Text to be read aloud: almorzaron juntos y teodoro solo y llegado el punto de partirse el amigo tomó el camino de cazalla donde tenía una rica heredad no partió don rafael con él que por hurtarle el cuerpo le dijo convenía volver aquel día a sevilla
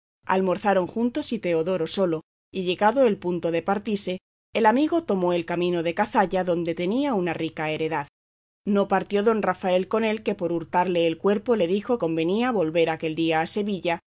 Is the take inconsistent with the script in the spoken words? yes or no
no